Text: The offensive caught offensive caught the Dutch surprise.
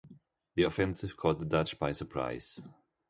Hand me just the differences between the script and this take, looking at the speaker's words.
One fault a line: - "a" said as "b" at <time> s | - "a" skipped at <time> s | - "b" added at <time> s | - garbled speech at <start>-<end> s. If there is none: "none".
- "offensive caught" skipped at 1.4 s
- "by" added at 1.8 s